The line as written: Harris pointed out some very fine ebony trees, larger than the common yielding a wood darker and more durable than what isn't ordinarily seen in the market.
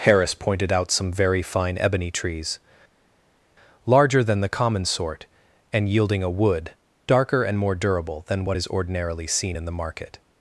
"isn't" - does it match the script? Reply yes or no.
no